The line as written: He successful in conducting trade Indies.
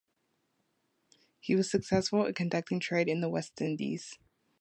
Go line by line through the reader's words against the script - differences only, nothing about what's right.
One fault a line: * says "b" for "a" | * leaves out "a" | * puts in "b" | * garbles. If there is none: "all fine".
* puts in "was"
* puts in "in the West"